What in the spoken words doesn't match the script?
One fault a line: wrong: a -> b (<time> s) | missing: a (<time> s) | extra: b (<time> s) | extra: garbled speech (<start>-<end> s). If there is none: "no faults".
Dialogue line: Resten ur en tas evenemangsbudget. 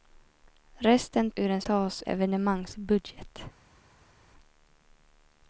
no faults